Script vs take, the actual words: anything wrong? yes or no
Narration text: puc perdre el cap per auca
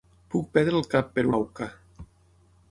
no